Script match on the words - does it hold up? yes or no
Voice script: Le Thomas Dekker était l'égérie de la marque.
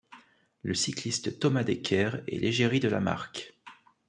no